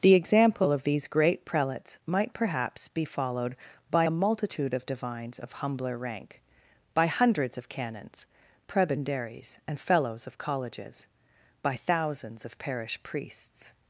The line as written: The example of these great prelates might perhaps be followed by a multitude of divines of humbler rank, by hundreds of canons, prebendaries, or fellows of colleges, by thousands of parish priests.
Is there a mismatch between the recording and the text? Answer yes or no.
yes